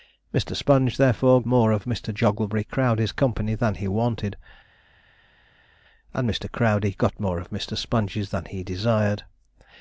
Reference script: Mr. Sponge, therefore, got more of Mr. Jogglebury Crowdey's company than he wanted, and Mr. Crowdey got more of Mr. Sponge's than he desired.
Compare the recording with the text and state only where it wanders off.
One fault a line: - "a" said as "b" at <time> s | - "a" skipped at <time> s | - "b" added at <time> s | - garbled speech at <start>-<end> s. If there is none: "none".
- "got" skipped at 1.4 s